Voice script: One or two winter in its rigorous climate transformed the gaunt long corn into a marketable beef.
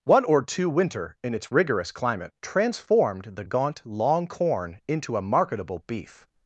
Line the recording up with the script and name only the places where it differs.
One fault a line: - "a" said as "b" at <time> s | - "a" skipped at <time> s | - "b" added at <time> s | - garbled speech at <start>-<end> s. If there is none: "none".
none